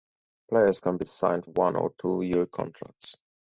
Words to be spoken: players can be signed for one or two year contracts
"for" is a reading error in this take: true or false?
true